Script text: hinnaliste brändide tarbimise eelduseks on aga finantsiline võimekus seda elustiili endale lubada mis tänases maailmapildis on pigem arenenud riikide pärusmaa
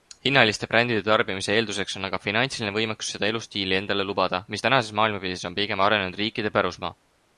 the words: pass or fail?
pass